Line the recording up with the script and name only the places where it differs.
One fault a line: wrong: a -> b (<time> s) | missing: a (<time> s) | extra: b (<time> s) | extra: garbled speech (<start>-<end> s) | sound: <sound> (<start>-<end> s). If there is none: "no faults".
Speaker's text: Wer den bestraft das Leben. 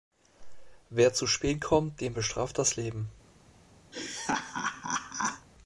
extra: zu spät kommt (1.1 s)
sound: laugh (3.9-5.5 s)